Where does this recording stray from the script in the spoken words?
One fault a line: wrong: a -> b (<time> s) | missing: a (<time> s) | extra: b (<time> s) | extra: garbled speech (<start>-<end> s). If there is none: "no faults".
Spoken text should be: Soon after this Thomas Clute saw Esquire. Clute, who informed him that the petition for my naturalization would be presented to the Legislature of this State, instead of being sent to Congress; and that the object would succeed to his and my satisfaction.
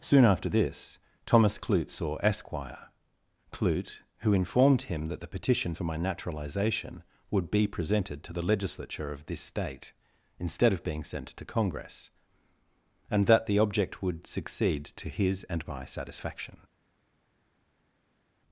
no faults